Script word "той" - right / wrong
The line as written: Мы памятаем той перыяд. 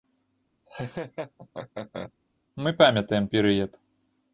wrong